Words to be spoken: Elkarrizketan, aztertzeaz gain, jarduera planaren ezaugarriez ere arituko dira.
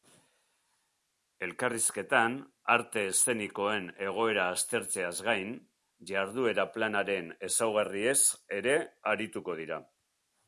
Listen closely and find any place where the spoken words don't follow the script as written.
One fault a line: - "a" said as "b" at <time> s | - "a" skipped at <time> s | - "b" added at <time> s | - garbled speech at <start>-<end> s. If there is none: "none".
- "arte eszenikoen egoera" added at 2.8 s